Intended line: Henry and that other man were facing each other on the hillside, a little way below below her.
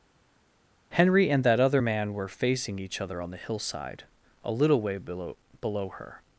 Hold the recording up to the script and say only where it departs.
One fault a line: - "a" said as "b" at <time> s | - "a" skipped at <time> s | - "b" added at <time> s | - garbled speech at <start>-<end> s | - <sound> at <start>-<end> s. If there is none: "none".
none